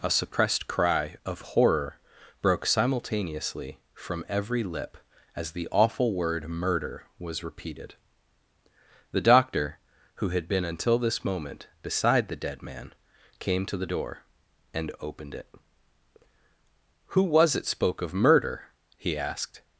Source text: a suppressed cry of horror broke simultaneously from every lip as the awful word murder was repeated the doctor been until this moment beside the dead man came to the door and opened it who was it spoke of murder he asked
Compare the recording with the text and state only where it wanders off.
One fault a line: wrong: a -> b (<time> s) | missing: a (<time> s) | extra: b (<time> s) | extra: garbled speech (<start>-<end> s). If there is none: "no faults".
extra: who had (10.2 s)